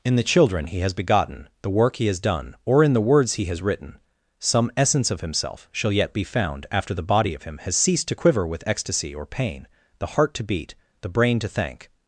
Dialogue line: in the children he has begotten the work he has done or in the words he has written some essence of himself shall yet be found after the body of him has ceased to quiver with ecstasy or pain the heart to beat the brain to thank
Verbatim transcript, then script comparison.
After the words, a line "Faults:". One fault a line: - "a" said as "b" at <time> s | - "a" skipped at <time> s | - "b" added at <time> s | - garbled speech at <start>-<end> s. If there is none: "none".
in the children he has begotten the work he has done or in the words he has written some essence of himself shall yet be found after the body of him has ceased to quiver with ecstasy or pain the heart to beat the brain to thank
Faults:
none